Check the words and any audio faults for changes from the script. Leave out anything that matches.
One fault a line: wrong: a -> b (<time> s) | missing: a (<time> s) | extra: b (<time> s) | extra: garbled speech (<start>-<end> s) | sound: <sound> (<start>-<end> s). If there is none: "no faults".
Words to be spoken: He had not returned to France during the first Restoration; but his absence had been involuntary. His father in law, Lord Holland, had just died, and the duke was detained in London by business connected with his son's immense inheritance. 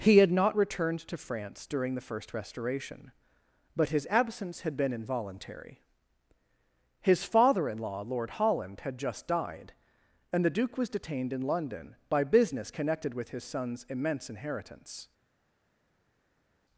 no faults